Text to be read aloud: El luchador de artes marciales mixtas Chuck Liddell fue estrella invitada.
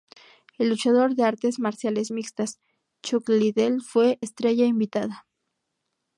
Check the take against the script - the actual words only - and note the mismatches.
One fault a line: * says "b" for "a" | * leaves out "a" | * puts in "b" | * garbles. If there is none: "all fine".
all fine